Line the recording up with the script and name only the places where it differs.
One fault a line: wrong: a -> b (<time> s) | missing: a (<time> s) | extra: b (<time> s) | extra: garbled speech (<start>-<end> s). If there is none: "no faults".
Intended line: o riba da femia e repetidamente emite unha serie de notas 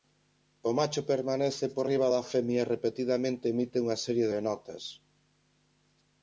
extra: macho permanece por (0.8 s)